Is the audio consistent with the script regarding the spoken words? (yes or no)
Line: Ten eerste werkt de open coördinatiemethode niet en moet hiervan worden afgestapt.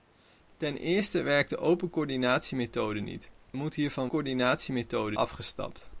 no